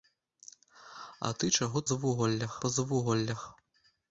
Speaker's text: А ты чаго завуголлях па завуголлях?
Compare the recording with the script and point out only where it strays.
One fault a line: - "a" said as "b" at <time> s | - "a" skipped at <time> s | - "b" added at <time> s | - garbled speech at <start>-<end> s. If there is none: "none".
none